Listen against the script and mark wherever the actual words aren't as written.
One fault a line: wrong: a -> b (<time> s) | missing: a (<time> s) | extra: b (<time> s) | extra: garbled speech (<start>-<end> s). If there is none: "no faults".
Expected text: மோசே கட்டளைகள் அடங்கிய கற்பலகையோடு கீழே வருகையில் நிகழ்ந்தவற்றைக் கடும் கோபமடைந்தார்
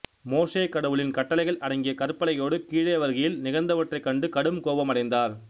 extra: கடவுளின் (0.7 s)
extra: கண்டு (4.1 s)